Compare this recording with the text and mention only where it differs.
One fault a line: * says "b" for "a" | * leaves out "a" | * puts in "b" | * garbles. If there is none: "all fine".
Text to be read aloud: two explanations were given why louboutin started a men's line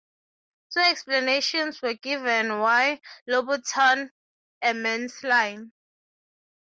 * leaves out "started"